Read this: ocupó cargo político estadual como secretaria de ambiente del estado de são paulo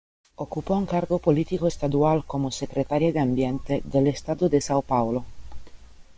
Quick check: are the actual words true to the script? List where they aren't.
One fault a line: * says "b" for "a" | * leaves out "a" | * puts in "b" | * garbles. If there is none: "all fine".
* puts in "un"